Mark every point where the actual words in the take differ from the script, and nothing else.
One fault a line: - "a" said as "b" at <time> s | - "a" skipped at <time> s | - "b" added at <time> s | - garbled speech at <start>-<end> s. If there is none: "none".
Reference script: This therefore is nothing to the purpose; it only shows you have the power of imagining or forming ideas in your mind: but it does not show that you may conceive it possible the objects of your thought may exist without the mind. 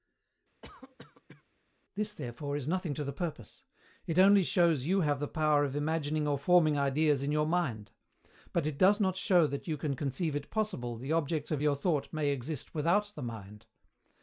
- "may" said as "can" at 9.8 s